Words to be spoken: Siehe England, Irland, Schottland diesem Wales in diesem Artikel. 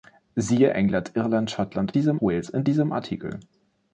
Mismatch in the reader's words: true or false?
false